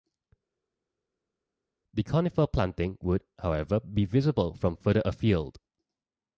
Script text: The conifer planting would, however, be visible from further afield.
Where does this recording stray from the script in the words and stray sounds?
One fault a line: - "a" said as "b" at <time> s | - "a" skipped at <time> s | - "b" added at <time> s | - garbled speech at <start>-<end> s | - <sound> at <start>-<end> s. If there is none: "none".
none